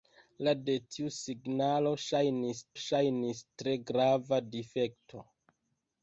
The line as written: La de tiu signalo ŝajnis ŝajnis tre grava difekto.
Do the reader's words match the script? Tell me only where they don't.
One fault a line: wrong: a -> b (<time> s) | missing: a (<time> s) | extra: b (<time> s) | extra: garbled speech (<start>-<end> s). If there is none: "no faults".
no faults